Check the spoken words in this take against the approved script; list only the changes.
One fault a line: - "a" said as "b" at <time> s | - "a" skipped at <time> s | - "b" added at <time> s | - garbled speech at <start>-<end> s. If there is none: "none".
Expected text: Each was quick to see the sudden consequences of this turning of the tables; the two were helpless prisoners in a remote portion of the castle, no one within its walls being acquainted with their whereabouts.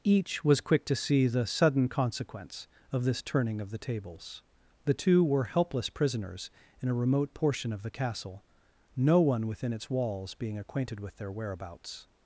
- "consequences" said as "consequence" at 1.9 s